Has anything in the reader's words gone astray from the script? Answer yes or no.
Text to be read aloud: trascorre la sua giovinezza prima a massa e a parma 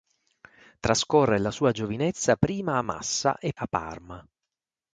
no